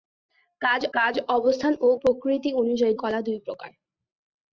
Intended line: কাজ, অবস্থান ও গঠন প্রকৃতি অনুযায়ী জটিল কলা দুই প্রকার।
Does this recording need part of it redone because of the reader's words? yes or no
yes